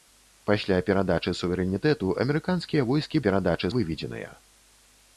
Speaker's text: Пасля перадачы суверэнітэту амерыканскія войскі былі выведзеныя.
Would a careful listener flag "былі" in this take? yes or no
yes